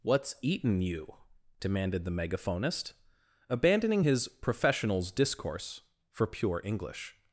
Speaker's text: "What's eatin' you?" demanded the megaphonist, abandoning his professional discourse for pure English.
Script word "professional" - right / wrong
wrong